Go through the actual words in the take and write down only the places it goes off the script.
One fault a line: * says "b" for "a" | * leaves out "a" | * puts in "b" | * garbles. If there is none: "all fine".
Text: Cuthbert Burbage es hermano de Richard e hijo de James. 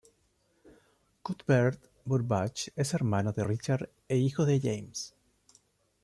all fine